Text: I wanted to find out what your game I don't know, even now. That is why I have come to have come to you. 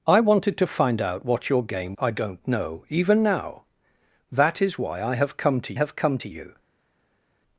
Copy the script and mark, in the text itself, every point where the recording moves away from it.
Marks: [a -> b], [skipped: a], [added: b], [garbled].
I wanted to find out what your game I don't know, even now. That is why I have come to have come to you.